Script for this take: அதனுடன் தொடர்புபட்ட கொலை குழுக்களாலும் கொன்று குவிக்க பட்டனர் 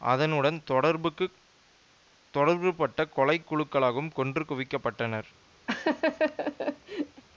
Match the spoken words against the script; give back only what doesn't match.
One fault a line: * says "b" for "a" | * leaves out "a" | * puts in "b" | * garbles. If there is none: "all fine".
all fine